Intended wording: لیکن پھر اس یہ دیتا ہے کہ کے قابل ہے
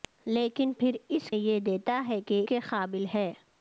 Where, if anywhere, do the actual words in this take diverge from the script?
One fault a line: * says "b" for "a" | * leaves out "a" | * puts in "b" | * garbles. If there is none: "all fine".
all fine